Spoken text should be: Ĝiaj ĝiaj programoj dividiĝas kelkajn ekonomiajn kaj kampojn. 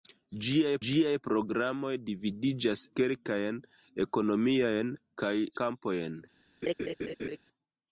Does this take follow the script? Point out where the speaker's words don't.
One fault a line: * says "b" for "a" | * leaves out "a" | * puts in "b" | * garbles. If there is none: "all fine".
all fine